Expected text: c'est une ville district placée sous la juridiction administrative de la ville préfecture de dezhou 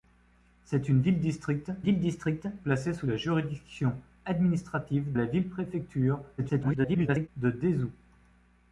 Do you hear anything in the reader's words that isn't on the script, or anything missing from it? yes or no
yes